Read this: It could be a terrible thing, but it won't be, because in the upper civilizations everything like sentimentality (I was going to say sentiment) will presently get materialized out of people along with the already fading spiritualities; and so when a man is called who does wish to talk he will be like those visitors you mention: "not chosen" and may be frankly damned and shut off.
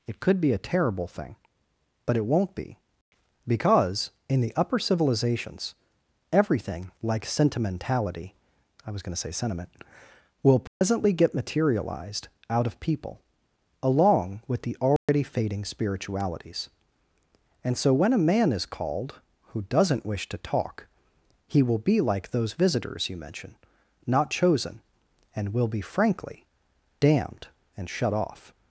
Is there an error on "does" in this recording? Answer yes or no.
yes